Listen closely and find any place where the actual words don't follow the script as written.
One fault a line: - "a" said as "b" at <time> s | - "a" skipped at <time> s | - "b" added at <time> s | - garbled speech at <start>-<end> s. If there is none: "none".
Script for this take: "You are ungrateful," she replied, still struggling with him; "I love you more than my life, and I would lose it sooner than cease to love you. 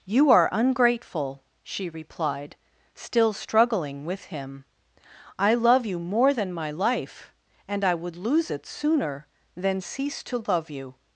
none